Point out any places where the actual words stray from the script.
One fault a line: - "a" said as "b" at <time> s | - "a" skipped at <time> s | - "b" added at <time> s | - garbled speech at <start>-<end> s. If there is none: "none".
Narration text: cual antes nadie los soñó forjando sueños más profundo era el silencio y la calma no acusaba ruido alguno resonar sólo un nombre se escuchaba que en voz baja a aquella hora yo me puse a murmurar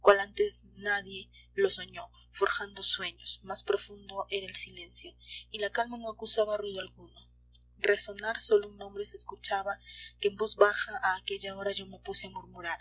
none